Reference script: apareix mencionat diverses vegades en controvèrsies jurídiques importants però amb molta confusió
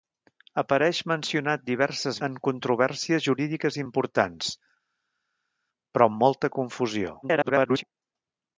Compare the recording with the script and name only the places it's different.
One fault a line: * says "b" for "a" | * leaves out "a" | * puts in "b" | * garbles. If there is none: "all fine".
* leaves out "vegades"
* garbles